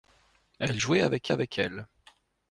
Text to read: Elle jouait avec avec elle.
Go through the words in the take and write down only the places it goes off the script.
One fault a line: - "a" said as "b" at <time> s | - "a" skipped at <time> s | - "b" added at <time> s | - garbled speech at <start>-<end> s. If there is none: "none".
none